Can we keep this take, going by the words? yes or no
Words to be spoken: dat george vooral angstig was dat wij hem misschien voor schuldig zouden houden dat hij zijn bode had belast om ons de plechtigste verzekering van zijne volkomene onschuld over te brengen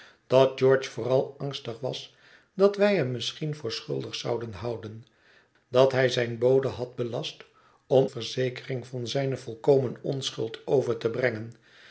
no